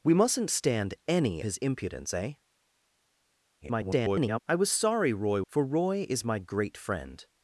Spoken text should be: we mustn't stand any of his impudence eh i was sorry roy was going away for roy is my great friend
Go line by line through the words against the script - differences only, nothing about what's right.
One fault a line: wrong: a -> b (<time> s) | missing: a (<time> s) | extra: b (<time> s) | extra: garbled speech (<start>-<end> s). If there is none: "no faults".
missing: of (1.4 s)
extra: garbled speech (3.6-4.4 s)
missing: was going away (5.4 s)